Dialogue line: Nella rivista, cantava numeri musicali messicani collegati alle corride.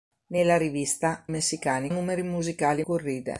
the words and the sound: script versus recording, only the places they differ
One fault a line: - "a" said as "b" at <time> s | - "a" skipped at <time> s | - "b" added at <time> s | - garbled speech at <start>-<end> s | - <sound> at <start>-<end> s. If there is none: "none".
- "cantava" said as "messicani" at 1.3 s
- "messicani collegati alle" skipped at 2.8 s